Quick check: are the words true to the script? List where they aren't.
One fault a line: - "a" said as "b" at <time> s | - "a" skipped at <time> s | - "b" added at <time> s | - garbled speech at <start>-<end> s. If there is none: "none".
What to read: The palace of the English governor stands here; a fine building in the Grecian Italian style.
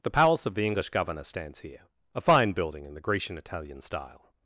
none